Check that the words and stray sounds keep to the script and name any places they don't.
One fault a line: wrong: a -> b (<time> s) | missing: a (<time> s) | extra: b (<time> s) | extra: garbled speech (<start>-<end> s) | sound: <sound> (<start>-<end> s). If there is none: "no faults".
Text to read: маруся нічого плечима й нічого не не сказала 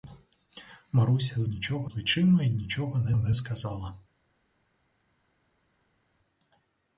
no faults